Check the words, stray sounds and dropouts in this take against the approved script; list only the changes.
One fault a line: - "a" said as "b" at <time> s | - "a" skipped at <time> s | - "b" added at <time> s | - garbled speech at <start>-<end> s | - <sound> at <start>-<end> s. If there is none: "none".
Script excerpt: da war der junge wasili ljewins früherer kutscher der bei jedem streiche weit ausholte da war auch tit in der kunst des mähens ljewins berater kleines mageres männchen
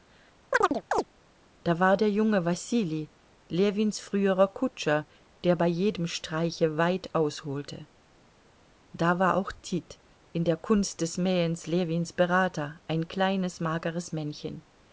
- chirp at 0.5-1.0 s
- "ein" added at 12.9 s